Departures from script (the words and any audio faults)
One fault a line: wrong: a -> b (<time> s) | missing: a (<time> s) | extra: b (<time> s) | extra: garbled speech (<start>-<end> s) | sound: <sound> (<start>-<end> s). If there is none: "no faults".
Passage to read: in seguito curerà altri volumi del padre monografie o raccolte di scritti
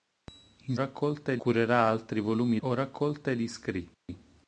wrong: seguito -> raccolte (0.7 s)
missing: del padre monografie (2.6 s)
sound: dropout (3.9-4.1 s)